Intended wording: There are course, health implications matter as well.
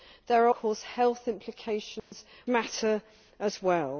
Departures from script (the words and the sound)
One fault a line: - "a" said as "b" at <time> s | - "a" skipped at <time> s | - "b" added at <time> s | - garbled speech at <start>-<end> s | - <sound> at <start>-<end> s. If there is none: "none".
- dropout at 2.0-2.1 s